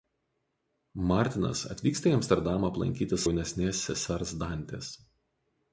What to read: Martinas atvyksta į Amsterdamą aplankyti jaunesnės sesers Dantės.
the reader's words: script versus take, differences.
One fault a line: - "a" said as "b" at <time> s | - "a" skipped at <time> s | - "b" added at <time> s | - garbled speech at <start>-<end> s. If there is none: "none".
none